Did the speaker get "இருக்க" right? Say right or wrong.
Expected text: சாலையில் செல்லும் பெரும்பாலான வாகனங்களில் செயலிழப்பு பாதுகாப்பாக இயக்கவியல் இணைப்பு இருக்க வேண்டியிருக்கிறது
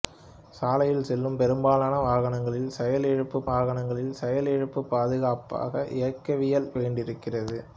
wrong